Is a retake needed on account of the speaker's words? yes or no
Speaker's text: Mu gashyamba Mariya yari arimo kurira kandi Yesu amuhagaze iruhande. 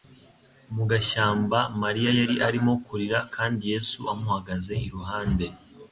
no